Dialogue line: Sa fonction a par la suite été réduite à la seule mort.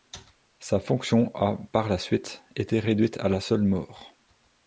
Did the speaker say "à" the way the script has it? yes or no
yes